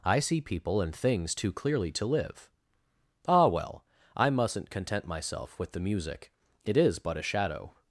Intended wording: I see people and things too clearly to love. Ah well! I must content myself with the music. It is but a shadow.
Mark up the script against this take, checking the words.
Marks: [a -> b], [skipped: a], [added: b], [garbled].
I see people and things too clearly to [love. -> live] Ah well! I [must -> mustn't] content myself with the music. It is but a shadow.